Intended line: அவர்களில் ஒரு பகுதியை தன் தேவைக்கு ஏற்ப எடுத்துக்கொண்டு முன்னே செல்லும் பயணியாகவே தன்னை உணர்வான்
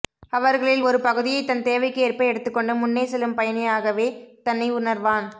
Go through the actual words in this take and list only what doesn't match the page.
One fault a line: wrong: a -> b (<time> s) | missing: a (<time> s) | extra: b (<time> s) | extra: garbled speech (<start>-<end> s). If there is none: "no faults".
no faults